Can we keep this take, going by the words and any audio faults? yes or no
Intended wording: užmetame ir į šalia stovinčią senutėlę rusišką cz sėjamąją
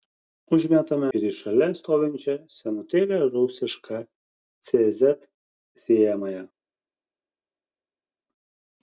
yes